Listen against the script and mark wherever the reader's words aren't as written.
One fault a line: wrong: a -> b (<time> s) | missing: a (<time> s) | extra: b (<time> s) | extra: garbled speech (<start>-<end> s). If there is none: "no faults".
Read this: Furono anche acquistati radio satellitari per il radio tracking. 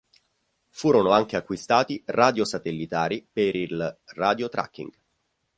no faults